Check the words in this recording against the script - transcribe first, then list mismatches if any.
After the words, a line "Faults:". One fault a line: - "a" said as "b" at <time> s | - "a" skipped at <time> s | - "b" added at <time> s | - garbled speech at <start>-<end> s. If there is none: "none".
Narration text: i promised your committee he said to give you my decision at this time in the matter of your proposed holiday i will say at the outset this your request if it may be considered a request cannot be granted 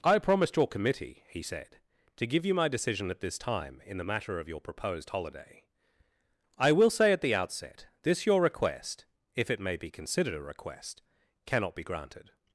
i promised your committee he said to give you my decision at this time in the matter of your proposed holiday i will say at the outset this your request if it may be considered a request cannot be granted
Faults:
none